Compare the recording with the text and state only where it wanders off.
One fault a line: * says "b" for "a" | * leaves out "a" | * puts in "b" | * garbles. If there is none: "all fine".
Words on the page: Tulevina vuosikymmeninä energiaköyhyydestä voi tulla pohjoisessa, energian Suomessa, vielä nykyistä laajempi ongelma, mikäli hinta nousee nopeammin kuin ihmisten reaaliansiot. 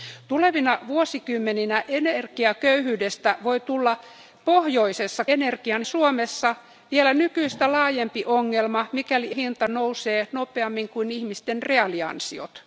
all fine